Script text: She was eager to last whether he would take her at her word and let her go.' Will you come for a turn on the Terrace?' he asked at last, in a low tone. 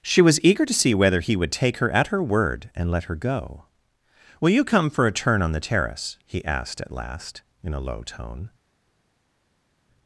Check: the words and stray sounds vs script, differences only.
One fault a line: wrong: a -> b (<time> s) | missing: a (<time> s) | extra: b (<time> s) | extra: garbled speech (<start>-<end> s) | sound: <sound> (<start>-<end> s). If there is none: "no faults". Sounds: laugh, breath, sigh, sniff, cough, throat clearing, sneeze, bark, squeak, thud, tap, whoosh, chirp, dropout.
wrong: last -> see (0.7 s)